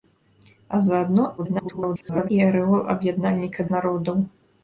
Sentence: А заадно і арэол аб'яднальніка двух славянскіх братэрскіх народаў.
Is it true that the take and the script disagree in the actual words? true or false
true